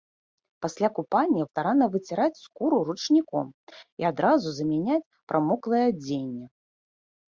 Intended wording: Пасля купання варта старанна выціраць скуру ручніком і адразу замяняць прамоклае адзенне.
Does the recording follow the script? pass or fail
fail